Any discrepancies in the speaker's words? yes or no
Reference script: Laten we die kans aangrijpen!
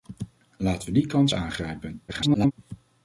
yes